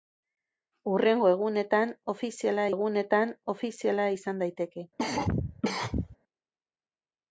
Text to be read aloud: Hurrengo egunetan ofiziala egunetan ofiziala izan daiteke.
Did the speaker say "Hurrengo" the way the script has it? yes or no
yes